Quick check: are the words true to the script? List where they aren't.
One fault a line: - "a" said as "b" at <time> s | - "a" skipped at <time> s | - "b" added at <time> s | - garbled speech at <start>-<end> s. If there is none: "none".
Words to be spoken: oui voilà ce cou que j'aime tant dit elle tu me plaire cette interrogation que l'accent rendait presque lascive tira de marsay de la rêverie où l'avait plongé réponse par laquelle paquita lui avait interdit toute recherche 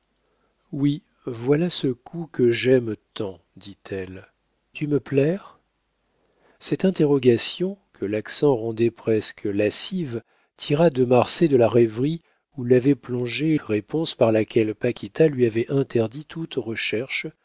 none